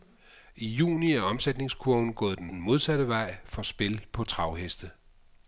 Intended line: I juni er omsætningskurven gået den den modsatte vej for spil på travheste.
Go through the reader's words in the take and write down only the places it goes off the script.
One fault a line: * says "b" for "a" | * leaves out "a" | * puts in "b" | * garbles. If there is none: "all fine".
all fine